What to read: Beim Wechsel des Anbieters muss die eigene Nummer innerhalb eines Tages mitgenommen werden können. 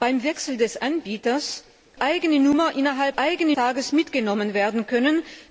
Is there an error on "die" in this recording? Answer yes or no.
yes